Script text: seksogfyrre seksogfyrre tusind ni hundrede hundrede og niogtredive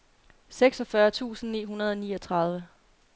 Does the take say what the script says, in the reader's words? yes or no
no